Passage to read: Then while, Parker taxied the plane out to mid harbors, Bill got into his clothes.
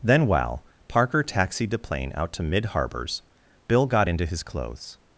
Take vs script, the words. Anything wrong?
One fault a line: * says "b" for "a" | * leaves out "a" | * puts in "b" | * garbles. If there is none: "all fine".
all fine